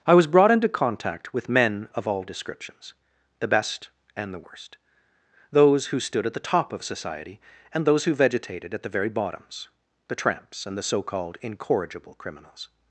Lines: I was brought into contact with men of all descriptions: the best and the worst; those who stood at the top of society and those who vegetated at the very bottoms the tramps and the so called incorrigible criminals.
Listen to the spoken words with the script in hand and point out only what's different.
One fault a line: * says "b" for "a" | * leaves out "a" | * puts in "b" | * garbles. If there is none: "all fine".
all fine